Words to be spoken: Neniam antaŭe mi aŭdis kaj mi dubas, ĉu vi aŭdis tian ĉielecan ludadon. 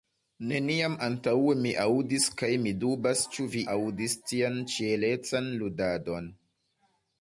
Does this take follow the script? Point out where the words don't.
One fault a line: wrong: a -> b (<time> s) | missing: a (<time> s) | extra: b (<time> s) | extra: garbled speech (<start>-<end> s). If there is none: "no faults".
no faults